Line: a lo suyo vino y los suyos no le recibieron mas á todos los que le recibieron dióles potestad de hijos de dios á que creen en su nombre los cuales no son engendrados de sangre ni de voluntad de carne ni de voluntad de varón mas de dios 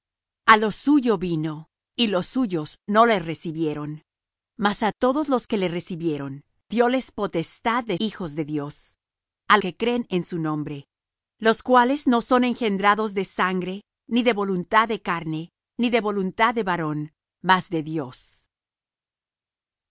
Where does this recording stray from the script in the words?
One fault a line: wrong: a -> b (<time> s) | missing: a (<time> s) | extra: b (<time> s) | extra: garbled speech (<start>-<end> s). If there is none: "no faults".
no faults